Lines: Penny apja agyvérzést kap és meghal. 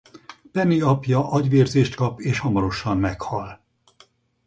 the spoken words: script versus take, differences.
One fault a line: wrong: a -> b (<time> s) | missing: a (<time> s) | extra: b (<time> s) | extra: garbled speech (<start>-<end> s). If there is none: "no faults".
extra: hamarosan (2.4 s)